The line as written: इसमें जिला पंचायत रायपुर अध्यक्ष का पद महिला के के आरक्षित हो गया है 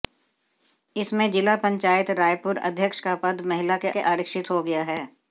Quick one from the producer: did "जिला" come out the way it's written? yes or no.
yes